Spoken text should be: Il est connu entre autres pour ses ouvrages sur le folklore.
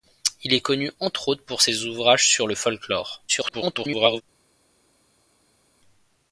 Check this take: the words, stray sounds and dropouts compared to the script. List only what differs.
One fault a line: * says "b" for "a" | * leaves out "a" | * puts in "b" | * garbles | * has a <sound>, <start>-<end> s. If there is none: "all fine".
* garbles